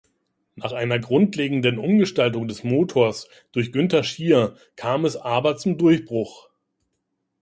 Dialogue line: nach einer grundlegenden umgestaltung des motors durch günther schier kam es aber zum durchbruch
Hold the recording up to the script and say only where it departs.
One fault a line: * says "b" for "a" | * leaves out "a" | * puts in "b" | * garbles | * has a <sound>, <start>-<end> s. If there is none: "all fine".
all fine